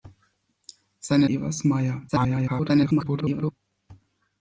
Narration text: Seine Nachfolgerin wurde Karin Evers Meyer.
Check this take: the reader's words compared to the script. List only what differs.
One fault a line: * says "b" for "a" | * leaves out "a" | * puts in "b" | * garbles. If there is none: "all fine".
* leaves out "Nachfolgerin wurde Karin"
* garbles